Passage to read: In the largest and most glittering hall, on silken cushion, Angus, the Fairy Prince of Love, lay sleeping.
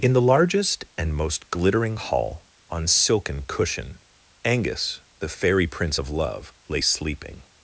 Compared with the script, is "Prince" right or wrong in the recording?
right